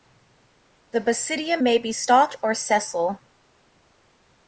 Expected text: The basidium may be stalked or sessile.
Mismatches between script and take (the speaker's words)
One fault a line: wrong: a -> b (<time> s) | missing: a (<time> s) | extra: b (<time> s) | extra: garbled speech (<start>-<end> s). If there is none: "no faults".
no faults